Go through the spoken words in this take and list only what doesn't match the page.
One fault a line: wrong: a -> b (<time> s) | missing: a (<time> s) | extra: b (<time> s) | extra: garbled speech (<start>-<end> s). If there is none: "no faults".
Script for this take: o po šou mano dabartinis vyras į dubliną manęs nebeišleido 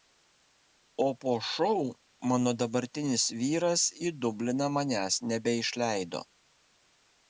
no faults